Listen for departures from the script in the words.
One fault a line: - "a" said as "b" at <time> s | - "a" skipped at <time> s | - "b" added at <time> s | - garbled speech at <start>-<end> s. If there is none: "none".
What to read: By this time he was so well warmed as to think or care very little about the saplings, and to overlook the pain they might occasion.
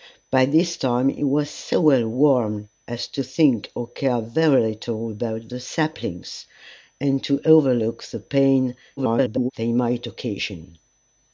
- garbled speech at 9.0-9.5 s